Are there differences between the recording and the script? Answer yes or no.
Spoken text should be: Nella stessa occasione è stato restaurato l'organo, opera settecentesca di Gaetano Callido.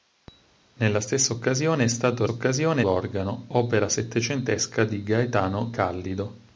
yes